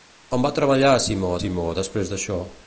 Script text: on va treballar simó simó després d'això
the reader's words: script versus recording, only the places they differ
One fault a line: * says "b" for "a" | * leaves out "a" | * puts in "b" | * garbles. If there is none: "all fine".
all fine